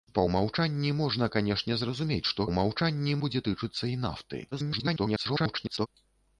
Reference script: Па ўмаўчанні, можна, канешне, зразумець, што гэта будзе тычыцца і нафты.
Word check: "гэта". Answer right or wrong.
wrong